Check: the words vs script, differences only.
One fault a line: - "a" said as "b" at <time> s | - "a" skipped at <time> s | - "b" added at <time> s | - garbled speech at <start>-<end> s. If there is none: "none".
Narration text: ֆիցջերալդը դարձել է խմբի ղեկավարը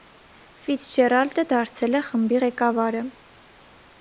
none